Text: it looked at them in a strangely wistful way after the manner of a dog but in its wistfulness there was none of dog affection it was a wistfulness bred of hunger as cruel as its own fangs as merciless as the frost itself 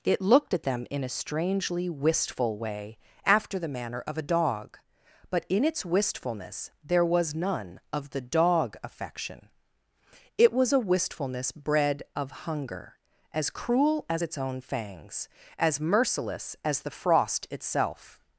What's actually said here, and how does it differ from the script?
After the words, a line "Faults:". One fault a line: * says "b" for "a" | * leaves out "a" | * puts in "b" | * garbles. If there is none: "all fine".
it looked at them in a strangely wistful way after the manner of a dog but in its wistfulness there was none of the dog affection it was a wistfulness bred of hunger as cruel as its own fangs as merciless as the frost itself
Faults:
* puts in "the"